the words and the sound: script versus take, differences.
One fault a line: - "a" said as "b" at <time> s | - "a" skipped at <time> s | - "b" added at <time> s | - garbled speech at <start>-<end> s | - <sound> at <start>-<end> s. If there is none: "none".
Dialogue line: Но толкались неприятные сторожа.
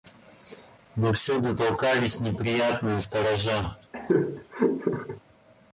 - "всюду" added at 1.1 s
- laugh at 3.9-5.2 s